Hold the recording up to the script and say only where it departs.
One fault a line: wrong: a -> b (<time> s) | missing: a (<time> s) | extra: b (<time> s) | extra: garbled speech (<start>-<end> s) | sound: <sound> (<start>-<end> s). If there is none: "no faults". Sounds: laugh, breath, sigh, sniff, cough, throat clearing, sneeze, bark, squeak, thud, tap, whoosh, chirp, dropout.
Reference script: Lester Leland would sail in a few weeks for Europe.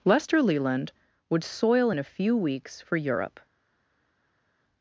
wrong: sail -> soil (1.4 s)